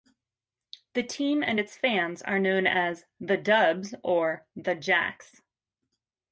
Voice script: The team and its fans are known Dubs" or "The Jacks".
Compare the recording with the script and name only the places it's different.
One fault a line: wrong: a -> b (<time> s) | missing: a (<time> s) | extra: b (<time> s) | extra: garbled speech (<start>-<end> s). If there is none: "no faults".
extra: as The (2.7 s)